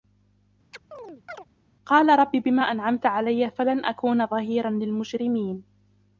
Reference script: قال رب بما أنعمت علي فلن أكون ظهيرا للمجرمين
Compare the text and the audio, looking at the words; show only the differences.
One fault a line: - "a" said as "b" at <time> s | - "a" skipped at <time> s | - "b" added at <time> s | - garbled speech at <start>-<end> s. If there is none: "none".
none